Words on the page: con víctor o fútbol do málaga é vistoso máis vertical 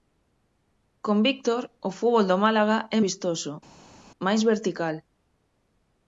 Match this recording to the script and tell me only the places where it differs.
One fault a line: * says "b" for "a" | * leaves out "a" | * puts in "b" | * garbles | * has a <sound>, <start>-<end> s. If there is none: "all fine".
all fine